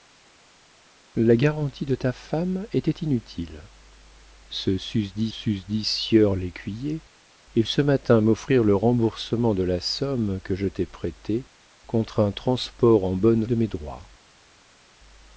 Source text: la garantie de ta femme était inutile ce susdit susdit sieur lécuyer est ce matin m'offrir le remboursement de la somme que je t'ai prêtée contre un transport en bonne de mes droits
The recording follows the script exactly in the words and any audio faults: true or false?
true